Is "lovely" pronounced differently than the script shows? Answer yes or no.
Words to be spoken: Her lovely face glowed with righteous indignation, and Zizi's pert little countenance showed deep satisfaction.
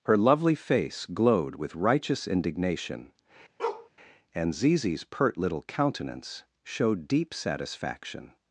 no